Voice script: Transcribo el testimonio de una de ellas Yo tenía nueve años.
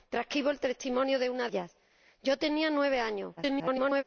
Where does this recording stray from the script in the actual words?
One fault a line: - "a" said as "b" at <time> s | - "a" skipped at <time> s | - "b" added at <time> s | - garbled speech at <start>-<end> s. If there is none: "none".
- "de" skipped at 1.5 s
- garbled speech at 3.4-4.0 s